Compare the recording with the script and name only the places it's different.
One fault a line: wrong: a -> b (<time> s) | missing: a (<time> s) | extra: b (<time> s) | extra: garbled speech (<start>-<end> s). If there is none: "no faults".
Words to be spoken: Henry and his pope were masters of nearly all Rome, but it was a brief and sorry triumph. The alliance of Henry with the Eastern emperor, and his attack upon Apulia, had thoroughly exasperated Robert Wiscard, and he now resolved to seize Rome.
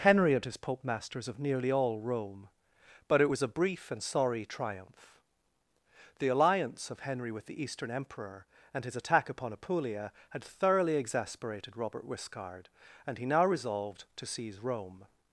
missing: were (0.8 s)